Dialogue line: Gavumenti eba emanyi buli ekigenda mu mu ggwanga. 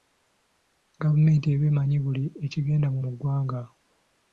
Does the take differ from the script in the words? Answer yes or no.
no